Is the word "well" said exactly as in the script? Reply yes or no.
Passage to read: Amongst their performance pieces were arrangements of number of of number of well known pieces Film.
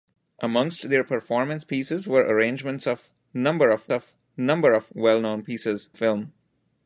yes